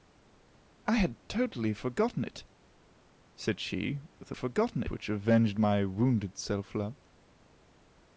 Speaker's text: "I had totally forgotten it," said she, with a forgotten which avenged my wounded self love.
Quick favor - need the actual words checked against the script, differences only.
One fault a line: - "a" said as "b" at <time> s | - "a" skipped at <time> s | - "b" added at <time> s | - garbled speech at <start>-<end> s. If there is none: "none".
none